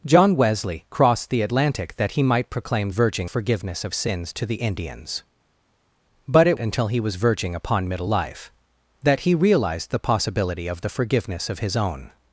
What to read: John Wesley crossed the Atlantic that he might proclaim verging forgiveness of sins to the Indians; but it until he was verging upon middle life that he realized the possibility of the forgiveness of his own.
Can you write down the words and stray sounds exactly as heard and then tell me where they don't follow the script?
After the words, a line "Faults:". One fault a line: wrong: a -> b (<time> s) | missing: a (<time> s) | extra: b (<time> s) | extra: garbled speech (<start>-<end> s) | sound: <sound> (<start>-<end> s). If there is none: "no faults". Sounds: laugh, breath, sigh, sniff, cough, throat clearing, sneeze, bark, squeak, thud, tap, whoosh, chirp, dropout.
John Wesley crossed the Atlantic that he might proclaim verging forgiveness of sins to the Indians; but it until he was verging upon middle life that he realized the possibility of the forgiveness of his own.
Faults:
no faults